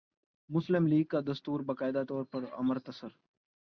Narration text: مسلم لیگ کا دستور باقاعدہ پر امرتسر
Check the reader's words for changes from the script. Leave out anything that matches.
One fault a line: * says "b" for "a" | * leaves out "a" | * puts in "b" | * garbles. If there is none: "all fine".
* puts in "طور"